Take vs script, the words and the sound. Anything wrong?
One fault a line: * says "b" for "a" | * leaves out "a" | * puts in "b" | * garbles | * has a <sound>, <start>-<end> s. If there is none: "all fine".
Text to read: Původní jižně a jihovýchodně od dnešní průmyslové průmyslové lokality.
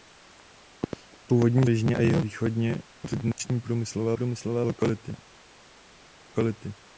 all fine